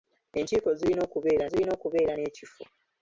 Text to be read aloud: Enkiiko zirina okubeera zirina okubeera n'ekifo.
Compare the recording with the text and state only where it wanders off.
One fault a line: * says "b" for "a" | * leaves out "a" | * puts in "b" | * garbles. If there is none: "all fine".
all fine